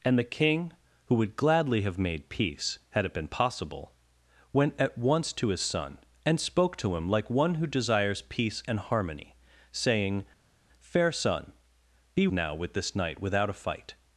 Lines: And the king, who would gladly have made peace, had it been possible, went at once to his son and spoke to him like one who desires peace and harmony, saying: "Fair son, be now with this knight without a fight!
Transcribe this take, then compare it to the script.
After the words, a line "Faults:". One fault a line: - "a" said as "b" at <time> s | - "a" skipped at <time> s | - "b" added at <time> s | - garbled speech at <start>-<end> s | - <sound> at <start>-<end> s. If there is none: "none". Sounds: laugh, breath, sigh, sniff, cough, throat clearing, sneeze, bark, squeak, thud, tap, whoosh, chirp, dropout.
And the king, who would gladly have made peace, had it been possible, went at once to his son and spoke to him like one who desires peace and harmony, saying: "Fair son, be now with this knight without a fight!
Faults:
none